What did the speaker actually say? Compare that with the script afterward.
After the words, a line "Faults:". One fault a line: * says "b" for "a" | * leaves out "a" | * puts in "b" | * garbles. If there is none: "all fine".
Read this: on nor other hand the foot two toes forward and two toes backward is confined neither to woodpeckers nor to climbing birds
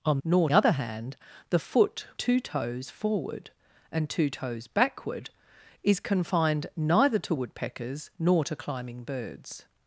on nor other hand the foot two toes forward and two toes backward is confined neither to woodpeckers nor to climbing birds
Faults:
all fine